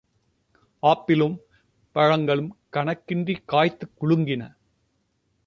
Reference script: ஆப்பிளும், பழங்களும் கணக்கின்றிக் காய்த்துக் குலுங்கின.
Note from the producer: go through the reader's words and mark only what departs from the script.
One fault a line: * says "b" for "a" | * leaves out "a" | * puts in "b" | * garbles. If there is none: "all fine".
all fine